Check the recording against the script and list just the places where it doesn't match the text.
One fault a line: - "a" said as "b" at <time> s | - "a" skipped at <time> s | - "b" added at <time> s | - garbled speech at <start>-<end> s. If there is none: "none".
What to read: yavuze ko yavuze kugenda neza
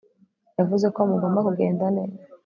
- "yavuze" said as "mugomba" at 1.1 s